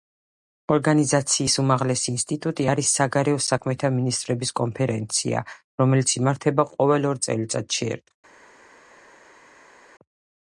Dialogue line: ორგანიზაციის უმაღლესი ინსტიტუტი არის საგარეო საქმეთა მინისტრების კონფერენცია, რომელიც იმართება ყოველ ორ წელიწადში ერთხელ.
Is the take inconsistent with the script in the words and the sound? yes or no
no